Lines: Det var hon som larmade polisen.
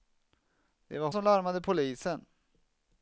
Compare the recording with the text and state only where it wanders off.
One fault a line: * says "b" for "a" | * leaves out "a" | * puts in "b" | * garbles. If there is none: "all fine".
* leaves out "hon"